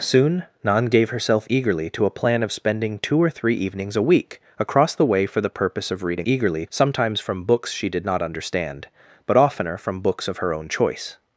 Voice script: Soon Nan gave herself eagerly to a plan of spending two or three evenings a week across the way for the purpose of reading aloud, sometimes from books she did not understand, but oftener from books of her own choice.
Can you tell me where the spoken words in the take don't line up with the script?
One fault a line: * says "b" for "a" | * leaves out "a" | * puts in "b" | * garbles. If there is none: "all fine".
* says "eagerly" for "aloud"